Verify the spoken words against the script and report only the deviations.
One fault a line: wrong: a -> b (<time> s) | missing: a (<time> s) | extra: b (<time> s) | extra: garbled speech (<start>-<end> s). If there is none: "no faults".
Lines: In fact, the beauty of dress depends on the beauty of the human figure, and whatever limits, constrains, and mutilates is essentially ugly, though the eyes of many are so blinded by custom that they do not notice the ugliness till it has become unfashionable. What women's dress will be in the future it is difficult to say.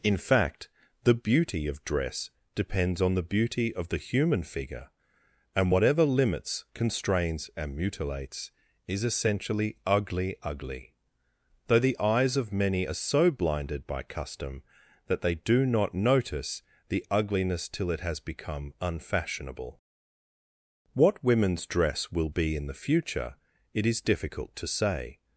extra: ugly (10.4 s)